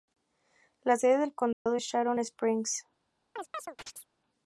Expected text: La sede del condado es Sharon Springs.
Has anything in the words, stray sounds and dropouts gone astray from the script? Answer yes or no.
yes